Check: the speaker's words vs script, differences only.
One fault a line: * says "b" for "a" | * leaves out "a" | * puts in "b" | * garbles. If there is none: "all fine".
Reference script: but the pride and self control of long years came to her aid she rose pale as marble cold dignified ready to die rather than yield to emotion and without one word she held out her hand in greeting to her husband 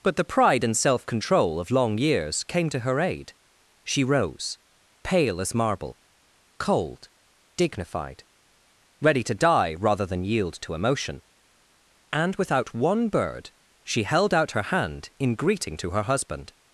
* says "bird" for "word"